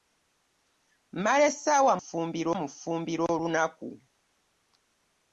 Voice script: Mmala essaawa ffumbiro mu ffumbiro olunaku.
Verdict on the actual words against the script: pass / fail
pass